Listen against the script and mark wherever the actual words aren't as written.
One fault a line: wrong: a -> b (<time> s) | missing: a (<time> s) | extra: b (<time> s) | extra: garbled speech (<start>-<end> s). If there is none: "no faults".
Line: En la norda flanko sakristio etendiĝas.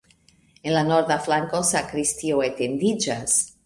no faults